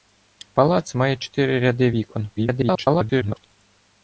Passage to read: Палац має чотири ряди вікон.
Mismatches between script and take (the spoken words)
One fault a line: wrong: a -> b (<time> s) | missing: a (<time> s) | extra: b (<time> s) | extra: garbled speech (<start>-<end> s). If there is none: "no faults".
extra: garbled speech (2.4-3.5 s)